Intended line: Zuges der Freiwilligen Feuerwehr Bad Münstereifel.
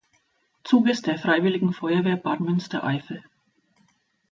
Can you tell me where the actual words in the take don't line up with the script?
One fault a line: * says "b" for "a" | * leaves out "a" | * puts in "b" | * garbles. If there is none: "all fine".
all fine